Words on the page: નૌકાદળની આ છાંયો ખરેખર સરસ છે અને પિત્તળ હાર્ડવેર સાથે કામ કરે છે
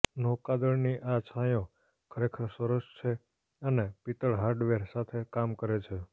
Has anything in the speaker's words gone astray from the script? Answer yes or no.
no